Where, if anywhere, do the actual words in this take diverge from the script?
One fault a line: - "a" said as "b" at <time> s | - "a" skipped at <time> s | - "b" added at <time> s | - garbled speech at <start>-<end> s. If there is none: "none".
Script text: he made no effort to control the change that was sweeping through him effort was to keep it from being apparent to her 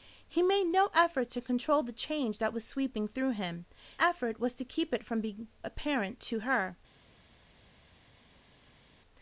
none